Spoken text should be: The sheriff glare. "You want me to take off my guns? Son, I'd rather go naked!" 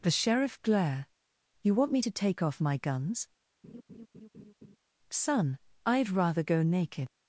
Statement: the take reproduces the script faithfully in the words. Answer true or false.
true